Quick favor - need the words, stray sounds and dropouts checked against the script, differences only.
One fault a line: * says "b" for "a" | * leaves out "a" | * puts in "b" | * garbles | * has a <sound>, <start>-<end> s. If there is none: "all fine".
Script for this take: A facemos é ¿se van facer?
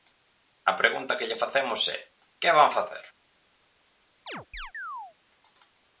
* puts in "pregunta que lle"
* says "que" for "se"
* has a chirp, 4.3-5.2 s